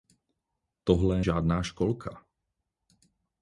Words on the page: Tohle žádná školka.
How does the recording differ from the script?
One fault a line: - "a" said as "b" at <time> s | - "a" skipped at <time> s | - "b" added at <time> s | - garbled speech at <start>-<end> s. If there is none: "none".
none